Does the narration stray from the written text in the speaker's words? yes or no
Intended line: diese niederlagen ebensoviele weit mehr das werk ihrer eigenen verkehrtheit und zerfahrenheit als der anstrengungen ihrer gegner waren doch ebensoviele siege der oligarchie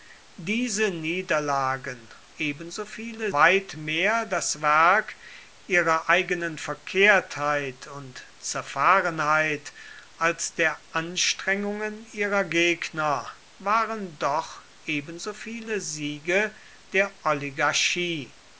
no